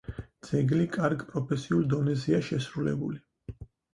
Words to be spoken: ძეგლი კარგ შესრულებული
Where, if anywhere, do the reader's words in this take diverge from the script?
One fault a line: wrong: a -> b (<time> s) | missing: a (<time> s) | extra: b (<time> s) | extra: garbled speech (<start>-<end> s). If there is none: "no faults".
extra: პროფესიულ დონეზეა (1.3 s)